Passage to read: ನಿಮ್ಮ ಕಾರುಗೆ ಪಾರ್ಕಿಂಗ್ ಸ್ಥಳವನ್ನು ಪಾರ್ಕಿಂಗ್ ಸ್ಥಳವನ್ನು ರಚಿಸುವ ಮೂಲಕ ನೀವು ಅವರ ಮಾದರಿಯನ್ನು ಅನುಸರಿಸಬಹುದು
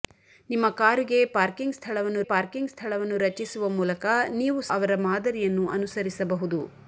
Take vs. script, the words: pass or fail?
pass